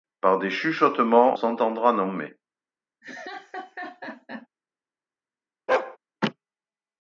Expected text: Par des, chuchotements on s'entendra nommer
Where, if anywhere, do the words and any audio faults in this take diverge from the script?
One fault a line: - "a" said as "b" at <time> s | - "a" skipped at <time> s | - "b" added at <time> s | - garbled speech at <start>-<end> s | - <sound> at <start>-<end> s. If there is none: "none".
- "on" skipped at 1.4 s
- laugh at 3.0-4.5 s
- bark at 5.7-6.0 s